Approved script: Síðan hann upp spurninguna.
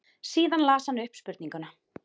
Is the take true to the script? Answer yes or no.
no